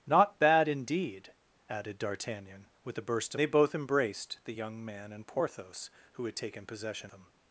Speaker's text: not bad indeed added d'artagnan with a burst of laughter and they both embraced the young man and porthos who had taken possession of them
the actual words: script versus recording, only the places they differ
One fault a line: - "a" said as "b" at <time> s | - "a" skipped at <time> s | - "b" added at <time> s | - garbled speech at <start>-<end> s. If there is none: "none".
- "of laughter and" skipped at 3.4 s
- "of" skipped at 7.1 s